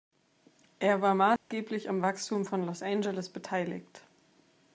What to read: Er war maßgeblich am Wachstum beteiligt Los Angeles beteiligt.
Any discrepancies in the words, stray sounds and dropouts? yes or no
yes